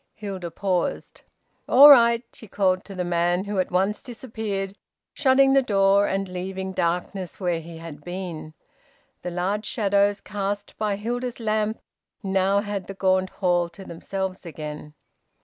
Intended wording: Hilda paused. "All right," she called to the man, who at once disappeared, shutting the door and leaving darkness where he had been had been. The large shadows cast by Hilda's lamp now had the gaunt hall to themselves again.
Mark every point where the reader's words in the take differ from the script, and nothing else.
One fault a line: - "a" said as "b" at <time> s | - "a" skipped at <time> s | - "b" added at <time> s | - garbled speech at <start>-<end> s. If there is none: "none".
- "had been" skipped at 8.6 s